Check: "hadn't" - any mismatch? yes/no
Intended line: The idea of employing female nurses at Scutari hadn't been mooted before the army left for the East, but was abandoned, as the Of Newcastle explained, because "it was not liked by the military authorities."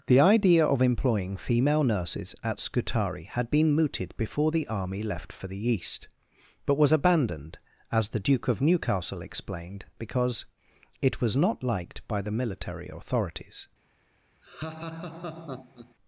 yes